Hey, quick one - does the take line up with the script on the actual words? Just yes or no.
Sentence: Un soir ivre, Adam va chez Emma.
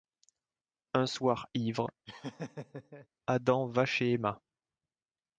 yes